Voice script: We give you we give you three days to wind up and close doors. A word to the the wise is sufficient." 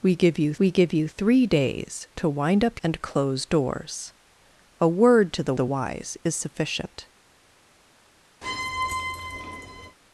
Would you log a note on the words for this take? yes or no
no